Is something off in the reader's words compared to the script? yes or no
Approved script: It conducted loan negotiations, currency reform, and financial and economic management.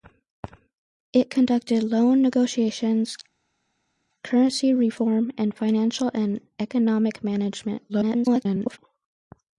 yes